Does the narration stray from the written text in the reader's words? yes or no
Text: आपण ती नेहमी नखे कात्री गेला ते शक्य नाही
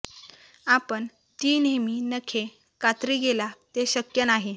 no